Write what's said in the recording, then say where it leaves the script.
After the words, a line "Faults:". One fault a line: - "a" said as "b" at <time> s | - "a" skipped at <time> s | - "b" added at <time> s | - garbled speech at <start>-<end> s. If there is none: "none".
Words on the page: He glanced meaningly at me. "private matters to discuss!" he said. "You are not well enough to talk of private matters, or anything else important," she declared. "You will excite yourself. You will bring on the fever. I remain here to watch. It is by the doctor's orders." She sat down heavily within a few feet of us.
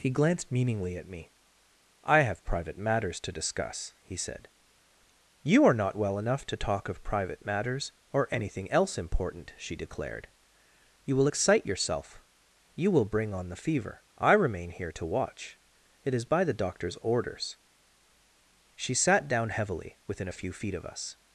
He glanced meaningly at me. "I have private matters to discuss!" he said. "You are not well enough to talk of private matters, or anything else important," she declared. "You will excite yourself. You will bring on the fever. I remain here to watch. It is by the doctor's orders." She sat down heavily within a few feet of us.
Faults:
- "I have" added at 2.0 s